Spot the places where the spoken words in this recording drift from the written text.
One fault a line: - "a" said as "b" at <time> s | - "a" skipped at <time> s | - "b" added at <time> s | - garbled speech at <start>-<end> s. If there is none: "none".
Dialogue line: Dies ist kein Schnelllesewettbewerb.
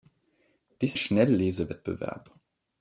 - "ist kein" skipped at 0.9 s